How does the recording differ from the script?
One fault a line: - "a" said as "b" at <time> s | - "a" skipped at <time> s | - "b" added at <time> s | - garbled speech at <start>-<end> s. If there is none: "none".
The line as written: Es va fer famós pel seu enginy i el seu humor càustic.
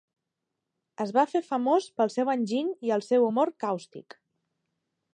none